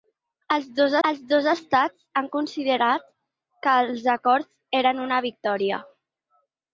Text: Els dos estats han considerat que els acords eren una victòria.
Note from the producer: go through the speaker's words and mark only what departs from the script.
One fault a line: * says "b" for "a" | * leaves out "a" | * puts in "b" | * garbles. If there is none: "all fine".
* puts in "els dos"